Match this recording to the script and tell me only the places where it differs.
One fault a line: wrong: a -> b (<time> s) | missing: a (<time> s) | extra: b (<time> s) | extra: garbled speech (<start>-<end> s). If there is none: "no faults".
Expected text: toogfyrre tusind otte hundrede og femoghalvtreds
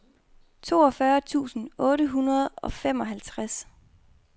no faults